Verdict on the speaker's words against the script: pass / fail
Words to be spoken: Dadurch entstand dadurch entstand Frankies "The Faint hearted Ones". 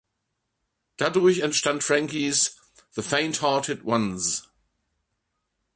fail